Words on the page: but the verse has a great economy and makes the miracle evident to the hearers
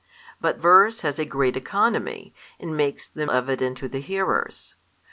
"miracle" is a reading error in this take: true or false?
true